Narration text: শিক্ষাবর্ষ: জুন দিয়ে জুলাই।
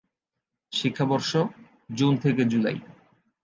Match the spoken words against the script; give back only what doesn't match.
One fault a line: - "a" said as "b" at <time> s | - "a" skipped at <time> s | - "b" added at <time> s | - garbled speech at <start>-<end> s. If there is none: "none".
- "দিয়ে" said as "থেকে" at 2.2 s